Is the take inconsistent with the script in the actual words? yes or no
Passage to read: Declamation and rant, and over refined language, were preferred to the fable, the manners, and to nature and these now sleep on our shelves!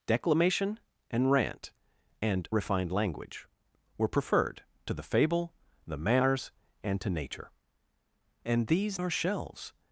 yes